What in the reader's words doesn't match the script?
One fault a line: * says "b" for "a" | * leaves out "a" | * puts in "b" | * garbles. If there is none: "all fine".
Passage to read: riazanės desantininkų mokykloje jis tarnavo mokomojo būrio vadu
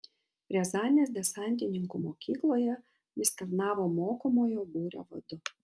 all fine